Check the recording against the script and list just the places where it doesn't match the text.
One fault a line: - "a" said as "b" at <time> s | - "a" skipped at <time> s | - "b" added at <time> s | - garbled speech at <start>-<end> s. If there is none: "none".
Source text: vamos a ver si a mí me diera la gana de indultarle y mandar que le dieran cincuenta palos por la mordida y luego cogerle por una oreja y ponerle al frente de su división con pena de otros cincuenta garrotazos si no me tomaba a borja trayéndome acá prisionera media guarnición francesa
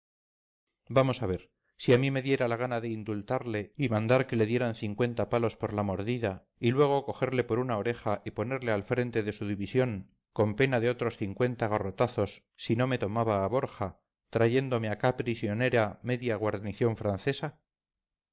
none